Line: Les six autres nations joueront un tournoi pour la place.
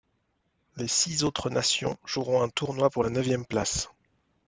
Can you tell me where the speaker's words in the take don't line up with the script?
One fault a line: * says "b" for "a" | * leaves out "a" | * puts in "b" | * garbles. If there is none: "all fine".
* puts in "neuvième"